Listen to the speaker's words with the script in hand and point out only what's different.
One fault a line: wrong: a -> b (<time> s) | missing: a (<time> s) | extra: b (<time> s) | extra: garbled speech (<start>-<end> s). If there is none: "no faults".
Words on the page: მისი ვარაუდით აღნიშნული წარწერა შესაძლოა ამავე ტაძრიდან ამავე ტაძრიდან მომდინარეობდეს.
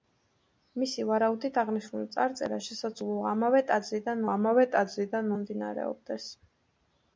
no faults